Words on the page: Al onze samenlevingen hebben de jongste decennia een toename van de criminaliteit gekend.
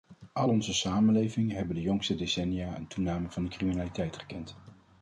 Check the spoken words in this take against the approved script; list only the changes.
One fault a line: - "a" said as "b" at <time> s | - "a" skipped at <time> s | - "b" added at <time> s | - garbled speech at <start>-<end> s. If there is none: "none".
none